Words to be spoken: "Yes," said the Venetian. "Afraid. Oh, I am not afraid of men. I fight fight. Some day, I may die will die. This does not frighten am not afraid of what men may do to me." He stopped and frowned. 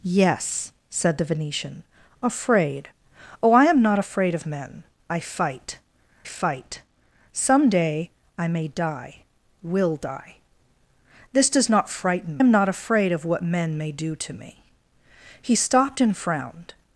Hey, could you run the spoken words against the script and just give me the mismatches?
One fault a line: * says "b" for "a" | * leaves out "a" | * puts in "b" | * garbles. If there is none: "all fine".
all fine